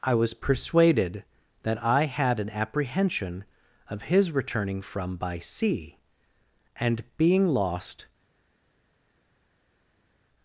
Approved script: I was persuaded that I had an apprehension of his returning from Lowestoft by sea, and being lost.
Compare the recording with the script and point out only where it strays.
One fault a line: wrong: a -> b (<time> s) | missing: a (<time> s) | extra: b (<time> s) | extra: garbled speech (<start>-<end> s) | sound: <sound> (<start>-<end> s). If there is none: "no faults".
missing: Lowestoft (5.2 s)